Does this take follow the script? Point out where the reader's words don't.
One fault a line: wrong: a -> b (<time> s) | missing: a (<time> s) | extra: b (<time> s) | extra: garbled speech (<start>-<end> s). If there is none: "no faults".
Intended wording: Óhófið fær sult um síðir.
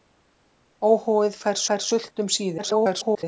extra: fær (1.7 s)
extra: garbled speech (2.6-3.2 s)